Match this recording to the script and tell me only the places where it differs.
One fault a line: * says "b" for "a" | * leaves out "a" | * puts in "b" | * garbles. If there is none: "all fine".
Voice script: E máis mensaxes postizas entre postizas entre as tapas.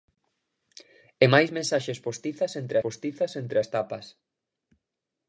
all fine